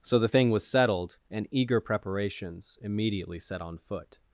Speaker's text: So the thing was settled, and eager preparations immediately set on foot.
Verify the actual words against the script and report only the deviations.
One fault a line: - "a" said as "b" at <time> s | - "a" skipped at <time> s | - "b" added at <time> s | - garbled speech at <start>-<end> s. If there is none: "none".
none